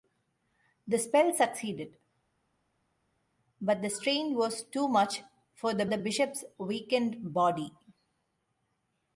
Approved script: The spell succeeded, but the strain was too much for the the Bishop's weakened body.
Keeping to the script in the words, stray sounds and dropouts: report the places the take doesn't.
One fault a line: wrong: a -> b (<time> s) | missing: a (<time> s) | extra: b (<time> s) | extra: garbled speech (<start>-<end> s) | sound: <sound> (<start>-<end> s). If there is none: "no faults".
no faults